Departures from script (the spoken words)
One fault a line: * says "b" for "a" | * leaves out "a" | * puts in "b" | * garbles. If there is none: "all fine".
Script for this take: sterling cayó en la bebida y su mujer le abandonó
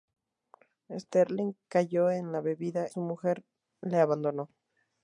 * leaves out "y"